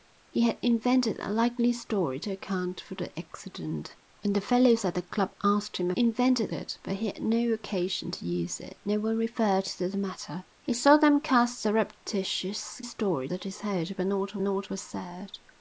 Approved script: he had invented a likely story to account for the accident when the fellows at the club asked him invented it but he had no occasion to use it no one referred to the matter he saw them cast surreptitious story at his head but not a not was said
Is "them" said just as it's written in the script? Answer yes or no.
yes